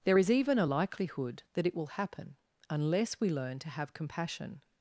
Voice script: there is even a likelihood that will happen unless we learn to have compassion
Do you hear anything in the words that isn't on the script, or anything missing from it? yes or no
yes